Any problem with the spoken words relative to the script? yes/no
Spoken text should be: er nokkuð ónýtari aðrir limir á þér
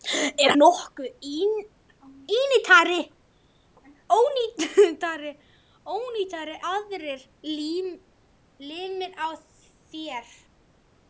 no